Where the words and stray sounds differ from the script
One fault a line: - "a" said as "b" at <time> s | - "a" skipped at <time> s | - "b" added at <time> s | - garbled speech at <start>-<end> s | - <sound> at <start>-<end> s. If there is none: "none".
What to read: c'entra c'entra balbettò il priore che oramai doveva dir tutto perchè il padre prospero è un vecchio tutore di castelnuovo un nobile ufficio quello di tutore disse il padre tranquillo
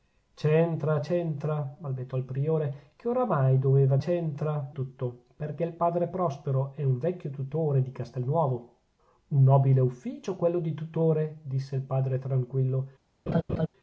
- "dir" said as "c'entra" at 4.0 s
- laugh at 13.3-13.7 s